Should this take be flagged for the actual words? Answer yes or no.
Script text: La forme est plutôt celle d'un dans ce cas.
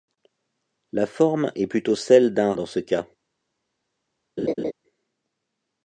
no